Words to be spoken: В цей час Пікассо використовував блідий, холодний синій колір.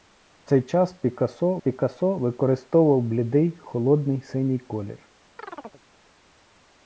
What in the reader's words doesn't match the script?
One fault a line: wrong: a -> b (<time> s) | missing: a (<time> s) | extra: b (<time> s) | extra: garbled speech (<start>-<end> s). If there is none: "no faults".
extra: Пікассо (1.6 s)